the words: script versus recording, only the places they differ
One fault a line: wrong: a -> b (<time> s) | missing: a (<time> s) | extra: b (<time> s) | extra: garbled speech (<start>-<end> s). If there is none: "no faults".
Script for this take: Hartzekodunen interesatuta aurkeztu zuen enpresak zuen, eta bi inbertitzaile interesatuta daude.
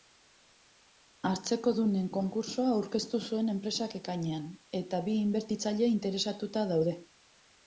wrong: interesatuta -> konkurtsoa (2.1 s)
wrong: zuen -> ekainean (4.0 s)